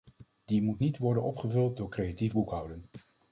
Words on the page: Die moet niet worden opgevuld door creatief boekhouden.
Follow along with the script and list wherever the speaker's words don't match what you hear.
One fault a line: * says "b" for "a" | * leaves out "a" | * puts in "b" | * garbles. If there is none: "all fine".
all fine